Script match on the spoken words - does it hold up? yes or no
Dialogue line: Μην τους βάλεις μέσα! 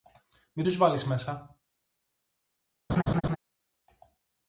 yes